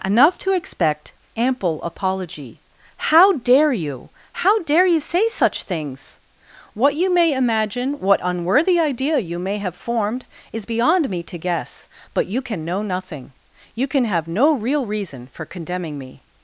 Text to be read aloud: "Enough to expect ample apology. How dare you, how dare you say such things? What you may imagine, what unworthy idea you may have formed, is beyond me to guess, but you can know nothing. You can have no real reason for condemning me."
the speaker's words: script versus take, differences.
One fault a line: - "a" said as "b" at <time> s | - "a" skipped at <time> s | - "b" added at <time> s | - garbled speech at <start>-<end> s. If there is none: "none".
none